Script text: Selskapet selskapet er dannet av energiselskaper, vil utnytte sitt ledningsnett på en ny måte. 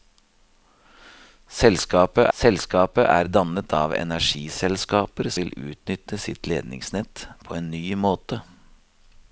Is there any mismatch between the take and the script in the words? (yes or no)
no